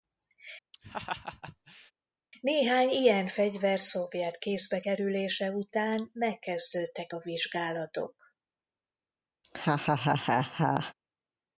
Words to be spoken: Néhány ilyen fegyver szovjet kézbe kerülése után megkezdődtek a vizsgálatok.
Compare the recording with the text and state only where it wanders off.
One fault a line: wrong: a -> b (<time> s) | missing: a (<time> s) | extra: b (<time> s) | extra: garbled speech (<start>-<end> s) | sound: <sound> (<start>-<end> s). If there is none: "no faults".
sound: laugh (0.7-1.9 s)
sound: laugh (9.4-10.9 s)